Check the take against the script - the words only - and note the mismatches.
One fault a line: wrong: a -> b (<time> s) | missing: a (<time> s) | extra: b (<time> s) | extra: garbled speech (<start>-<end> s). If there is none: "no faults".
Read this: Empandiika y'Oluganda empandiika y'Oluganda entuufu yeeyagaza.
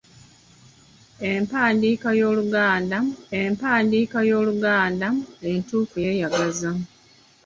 no faults